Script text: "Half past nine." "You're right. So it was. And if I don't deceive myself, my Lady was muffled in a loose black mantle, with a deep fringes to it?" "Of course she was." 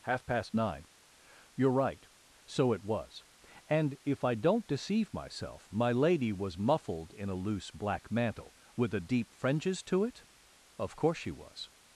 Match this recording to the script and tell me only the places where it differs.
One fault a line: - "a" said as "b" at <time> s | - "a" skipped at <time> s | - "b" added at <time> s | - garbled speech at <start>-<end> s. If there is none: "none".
none